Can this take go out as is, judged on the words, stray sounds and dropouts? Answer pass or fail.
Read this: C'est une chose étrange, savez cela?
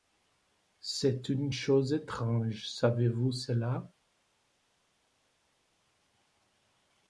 fail